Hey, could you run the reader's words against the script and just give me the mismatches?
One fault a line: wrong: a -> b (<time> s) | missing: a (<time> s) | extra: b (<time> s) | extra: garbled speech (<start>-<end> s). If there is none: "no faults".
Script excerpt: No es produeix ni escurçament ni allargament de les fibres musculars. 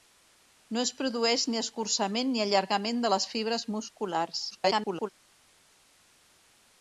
extra: garbled speech (4.5-5.1 s)